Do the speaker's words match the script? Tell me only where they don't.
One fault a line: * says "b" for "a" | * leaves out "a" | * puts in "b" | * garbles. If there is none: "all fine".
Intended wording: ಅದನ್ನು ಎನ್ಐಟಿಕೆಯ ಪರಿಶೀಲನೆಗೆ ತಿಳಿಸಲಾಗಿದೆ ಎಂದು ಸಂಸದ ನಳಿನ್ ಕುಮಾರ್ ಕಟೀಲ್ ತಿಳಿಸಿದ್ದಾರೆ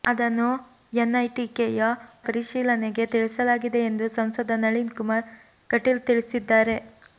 all fine